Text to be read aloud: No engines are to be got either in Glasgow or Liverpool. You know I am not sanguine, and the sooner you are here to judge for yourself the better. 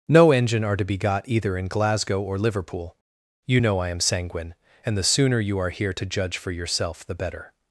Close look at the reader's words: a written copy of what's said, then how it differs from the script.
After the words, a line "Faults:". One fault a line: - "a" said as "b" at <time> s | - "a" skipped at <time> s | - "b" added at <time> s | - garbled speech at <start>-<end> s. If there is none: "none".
No engine are to be got either in Glasgow or Liverpool. You know I am sanguine, and the sooner you are here to judge for yourself the better.
Faults:
- "engines" said as "engine" at 0.3 s
- "not" skipped at 4.0 s